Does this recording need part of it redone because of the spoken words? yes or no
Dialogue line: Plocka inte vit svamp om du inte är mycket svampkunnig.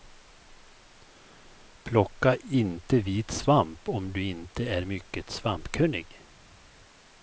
no